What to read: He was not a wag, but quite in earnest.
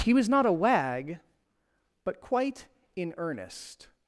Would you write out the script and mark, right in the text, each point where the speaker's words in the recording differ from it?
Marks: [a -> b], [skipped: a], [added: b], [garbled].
He was not a wag, but quite in earnest.